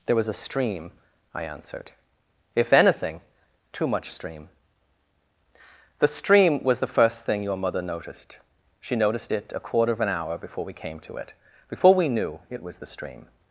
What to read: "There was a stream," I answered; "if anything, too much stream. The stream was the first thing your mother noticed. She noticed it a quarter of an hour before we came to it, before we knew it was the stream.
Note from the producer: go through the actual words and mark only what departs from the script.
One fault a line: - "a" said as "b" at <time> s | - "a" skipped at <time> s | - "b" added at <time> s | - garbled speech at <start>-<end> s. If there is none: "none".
none